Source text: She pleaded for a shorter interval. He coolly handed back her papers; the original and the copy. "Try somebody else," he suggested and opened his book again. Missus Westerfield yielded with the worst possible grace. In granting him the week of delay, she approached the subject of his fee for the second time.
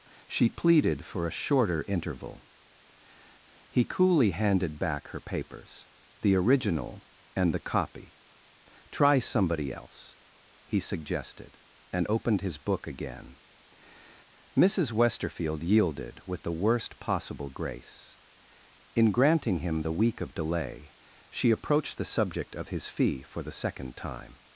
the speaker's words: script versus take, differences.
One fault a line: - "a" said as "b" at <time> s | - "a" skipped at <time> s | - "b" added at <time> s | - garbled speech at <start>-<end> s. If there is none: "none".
none